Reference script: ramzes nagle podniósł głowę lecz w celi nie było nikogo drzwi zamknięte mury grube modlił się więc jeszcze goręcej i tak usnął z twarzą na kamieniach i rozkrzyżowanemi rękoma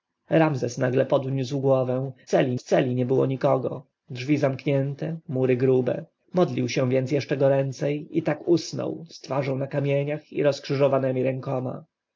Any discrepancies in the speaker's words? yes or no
yes